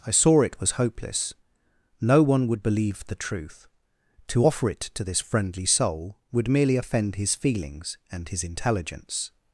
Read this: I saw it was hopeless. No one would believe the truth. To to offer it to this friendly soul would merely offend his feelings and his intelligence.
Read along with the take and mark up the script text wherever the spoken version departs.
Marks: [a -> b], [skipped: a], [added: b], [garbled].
I saw it was hopeless. No one would believe the truth. To [skipped: to] offer it to this friendly soul would merely offend his feelings and his intelligence.